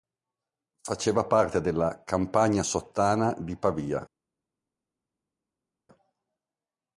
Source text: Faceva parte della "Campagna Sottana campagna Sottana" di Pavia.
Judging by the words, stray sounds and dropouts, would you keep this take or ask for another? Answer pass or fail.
fail